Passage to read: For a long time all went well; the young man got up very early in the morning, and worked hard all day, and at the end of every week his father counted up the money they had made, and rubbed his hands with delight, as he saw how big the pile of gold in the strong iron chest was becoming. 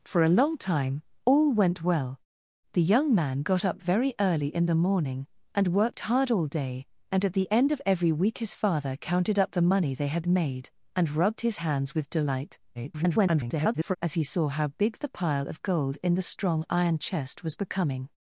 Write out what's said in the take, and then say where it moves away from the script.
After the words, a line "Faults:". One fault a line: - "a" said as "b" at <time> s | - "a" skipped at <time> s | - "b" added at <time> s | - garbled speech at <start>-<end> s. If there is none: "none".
For a long time all went well; the young man got up very early in the morning, and worked hard all day, and at the end of every week his father counted up the money they had made, and rubbed his hands with delight, [garbled] as he saw how big the pile of gold in the strong iron chest was becoming.
Faults:
- garbled speech at 12.7-14.0 s